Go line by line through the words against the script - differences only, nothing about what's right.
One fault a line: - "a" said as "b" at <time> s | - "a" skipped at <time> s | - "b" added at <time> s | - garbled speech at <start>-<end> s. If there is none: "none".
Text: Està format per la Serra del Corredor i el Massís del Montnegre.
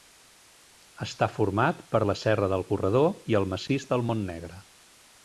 none